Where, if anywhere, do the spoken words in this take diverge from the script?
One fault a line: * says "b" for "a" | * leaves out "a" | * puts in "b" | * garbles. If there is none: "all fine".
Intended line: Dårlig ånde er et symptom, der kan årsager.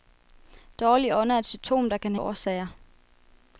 all fine